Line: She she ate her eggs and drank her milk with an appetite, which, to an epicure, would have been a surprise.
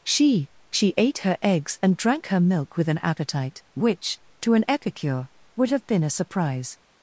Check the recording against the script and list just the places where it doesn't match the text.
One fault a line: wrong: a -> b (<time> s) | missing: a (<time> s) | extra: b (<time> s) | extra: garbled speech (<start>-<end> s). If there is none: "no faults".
no faults